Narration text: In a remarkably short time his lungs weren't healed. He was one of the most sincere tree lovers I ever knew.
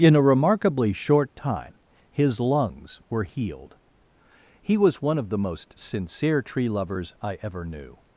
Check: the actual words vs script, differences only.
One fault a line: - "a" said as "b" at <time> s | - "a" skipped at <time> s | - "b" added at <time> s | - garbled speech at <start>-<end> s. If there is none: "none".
- "weren't" said as "were" at 3.1 s